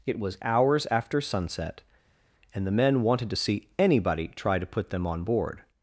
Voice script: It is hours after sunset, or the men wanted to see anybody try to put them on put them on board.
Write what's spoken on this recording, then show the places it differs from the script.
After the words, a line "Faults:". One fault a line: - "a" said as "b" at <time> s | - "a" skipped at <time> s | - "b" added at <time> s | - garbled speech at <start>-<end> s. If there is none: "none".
It was hours after sunset, and the men wanted to see anybody try to put them on board.
Faults:
- "is" said as "was" at 0.2 s
- "or" said as "and" at 2.5 s
- "put them on" skipped at 5.2 s